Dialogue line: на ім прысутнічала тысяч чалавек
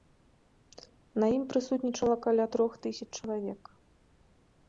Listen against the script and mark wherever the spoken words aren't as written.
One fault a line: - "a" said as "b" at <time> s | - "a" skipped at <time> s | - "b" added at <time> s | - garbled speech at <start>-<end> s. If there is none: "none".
- "каля трох" added at 2.2 s